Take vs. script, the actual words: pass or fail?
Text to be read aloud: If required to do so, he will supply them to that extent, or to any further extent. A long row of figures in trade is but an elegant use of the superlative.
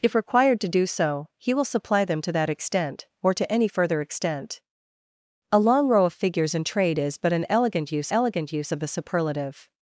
fail